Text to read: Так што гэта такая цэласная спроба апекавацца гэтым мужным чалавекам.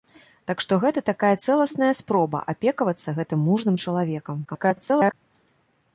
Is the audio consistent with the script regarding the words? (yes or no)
no